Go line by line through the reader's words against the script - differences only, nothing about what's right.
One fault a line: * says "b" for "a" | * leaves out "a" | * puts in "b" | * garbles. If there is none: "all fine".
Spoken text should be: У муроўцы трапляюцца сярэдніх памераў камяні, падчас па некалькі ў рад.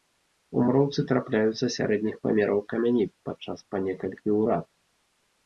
all fine